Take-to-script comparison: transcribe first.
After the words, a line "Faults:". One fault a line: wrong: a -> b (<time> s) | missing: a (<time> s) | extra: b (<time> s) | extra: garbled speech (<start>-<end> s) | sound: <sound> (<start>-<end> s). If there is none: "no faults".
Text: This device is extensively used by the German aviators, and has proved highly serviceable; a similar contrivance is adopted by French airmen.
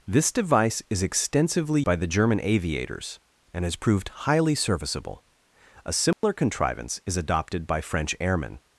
This device is extensively by the German aviators, and has proved highly serviceable; a similar contrivance is adopted by French airmen.
Faults:
missing: used (1.8 s)
sound: dropout (6.1-6.2 s)